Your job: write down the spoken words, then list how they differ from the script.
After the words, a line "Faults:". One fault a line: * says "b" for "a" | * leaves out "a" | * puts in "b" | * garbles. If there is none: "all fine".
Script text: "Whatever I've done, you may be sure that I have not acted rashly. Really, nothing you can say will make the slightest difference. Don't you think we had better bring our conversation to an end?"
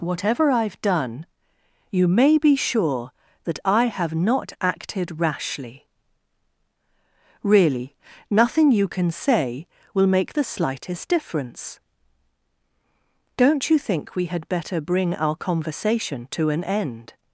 "Whatever I've done, you may be sure that I have not acted rashly. Really, nothing you can say will make the slightest difference. Don't you think we had better bring our conversation to an end?"
Faults:
all fine